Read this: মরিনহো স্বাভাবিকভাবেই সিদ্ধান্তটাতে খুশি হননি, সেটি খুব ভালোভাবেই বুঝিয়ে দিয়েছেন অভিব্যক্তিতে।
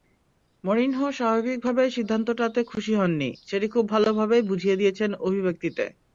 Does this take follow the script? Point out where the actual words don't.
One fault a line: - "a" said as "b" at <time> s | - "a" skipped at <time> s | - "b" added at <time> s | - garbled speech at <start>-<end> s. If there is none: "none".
none